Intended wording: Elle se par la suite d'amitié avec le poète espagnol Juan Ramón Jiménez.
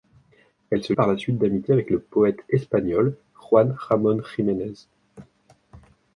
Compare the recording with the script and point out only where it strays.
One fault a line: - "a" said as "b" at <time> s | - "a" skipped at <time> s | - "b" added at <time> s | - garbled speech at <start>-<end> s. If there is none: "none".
none